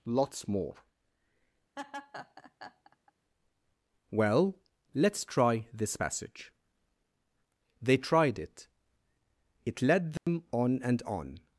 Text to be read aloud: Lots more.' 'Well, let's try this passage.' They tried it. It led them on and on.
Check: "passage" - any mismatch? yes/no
no